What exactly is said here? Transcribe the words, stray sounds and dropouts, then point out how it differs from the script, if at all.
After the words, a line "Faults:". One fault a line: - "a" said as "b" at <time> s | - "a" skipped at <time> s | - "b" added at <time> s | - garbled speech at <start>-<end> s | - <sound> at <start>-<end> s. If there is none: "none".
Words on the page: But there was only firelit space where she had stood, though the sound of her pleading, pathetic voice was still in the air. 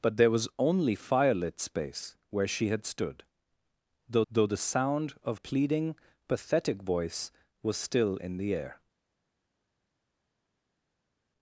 But there was only firelit space where she had stood, though though the sound of pleading, pathetic voice was still in the air.
Faults:
- "though" added at 4.3 s
- "her" skipped at 5.4 s